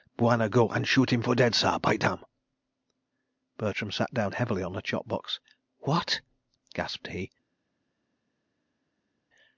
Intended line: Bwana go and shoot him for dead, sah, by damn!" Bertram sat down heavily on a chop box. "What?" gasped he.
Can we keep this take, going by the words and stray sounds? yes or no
yes